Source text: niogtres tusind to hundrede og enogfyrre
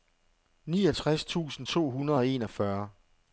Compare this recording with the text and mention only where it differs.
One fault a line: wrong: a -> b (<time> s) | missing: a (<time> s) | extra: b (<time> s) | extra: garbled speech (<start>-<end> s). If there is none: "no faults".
no faults